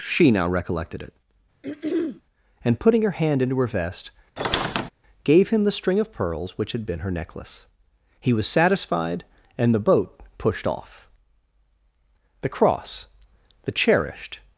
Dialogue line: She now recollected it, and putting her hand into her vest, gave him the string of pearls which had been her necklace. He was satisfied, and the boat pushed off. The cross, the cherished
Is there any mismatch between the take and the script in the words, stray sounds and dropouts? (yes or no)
yes